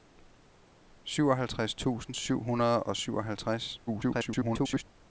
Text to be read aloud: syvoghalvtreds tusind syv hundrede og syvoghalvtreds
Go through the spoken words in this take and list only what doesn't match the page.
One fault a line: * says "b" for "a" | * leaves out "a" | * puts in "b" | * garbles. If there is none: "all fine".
* garbles